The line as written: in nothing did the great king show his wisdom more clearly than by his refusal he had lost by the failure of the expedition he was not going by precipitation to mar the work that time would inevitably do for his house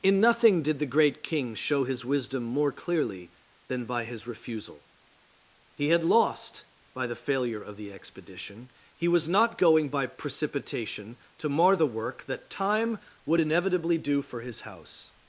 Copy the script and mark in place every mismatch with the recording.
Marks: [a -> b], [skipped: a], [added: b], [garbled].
in nothing did the great king show his wisdom more clearly than by his refusal he had lost by the failure of the expedition he was not going by precipitation to mar the work that time would inevitably do for his house